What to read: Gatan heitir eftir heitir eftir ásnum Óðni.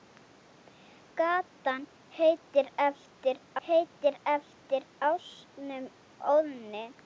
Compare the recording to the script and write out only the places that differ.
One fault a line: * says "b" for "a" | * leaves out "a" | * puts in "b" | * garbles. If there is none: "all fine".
all fine